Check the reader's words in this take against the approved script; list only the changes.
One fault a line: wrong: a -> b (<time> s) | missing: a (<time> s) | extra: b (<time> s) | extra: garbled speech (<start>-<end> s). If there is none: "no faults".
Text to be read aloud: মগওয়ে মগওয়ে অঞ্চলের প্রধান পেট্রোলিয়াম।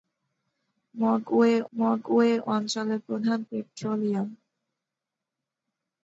no faults